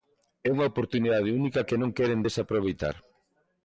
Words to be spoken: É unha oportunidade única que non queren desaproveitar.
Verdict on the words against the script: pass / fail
pass